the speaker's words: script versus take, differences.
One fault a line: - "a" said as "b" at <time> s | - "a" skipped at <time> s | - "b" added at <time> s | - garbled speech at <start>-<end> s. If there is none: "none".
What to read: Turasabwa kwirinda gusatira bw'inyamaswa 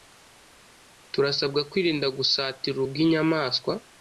none